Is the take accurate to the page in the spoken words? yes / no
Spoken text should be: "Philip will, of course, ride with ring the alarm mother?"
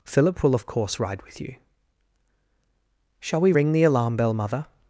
no